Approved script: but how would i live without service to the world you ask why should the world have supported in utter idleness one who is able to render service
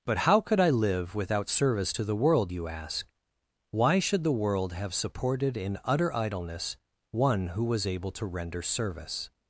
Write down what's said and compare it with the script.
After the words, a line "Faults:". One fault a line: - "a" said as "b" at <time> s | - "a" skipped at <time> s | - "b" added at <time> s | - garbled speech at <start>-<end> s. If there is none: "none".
but how could i live without service to the world you ask why should the world have supported in utter idleness one who was able to render service
Faults:
- "would" said as "could" at 0.4 s
- "is" said as "was" at 7.6 s